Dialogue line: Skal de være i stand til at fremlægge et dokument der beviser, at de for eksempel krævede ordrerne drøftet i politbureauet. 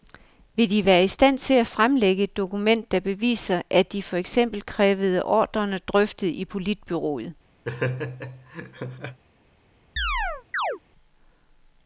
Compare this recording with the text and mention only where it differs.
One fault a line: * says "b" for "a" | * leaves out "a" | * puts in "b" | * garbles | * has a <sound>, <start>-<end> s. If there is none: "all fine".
* says "Vil" for "Skal"
* has a laugh, 7.6-9.2 s
* has a chirp, 10.0-10.8 s